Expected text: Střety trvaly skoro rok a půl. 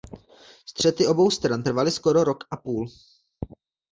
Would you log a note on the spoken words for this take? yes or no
yes